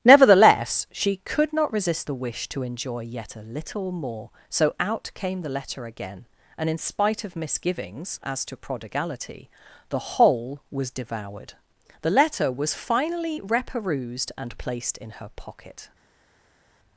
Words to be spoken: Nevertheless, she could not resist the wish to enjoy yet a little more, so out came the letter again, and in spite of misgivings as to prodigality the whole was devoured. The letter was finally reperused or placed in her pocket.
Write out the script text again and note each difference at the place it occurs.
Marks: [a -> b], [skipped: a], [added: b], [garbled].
Nevertheless, she could not resist the wish to enjoy yet a little more, so out came the letter again, and in spite of misgivings as to prodigality the whole was devoured. The letter was finally reperused [or -> and] placed in her pocket.